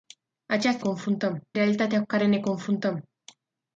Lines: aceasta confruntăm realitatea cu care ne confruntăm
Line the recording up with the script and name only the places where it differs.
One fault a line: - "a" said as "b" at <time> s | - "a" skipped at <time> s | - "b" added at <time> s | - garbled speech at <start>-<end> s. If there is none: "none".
none